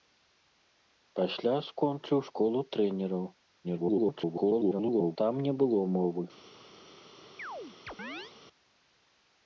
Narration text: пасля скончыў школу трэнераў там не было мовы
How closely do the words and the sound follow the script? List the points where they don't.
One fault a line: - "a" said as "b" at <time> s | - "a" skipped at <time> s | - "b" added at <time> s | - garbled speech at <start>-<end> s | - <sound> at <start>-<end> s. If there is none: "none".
- garbled speech at 3.6-5.2 s
- chirp at 7.4-8.3 s